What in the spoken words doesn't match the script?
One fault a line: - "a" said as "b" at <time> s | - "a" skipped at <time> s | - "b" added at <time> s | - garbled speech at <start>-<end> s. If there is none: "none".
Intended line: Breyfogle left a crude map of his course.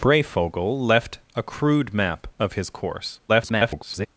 - garbled speech at 3.3-4.1 s